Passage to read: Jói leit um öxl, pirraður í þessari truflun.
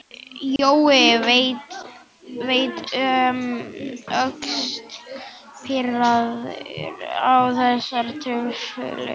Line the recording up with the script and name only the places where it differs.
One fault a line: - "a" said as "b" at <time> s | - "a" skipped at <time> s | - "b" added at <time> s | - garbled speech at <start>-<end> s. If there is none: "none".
- "í" said as "á" at 7.2 s